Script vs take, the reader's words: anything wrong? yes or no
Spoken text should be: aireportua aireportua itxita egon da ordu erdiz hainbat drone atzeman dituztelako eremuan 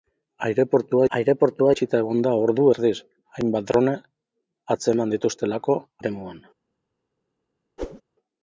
no